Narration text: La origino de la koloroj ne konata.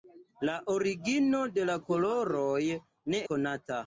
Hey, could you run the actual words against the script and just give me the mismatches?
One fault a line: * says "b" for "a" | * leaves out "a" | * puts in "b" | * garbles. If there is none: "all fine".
all fine